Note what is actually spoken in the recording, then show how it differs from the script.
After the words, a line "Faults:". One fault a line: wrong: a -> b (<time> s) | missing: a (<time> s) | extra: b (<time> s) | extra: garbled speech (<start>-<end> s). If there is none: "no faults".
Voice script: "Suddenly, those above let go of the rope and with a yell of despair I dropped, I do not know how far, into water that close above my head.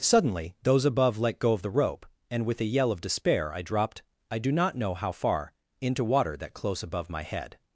"Suddenly, those above let go of the rope and with a yell of despair I dropped, I do not know how far, into water that close above my head.
Faults:
no faults